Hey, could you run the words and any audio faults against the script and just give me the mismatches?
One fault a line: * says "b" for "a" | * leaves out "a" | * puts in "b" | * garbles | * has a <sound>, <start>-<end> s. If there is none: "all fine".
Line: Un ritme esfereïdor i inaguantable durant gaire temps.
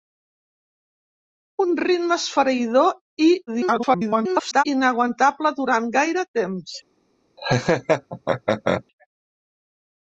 * garbles
* has a laugh, 7.4-8.8 s